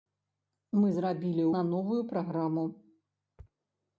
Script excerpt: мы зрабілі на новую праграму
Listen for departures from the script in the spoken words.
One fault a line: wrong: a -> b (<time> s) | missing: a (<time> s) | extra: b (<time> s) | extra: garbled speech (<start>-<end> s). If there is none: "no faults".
no faults